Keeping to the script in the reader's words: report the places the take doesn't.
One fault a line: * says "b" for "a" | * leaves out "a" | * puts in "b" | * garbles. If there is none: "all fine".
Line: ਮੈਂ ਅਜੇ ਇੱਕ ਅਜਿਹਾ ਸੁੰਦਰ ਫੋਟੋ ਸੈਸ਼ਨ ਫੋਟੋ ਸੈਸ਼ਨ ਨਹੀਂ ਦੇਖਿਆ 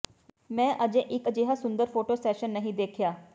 * leaves out "ਫੋਟੋ ਸੈਸ਼ਨ"